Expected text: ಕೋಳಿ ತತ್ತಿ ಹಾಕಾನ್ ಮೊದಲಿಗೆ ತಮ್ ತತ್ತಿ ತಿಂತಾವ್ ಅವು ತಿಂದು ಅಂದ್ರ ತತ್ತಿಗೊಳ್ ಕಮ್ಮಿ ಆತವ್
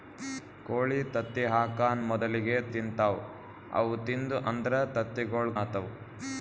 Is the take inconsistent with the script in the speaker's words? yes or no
yes